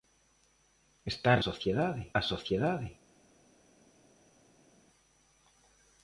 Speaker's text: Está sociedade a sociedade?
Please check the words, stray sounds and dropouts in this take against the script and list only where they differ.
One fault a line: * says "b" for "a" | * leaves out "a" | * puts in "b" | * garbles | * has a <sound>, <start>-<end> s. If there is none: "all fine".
all fine